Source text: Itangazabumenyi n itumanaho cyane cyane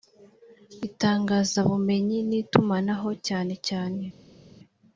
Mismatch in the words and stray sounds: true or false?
false